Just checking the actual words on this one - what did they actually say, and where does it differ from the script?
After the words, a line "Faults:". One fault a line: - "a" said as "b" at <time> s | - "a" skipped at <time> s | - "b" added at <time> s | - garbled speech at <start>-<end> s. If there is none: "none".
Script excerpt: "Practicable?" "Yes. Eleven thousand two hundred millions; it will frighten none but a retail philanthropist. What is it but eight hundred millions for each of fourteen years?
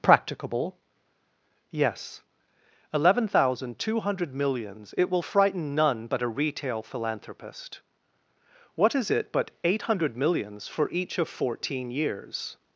"Practicable?" "Yes. Eleven thousand two hundred millions; it will frighten none but a retail philanthropist. What is it but eight hundred millions for each of fourteen years?
Faults:
none